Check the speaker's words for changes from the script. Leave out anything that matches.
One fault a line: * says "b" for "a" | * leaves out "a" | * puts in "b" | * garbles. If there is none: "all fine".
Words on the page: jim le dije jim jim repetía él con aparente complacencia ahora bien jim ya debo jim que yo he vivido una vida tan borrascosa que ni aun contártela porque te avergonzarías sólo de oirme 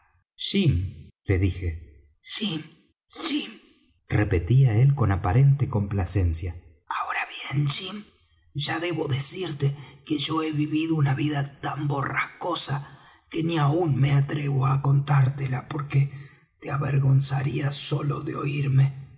* says "decirte" for "jim"
* puts in "me atrevo á"